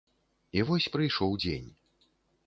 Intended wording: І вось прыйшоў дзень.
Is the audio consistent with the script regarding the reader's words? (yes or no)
yes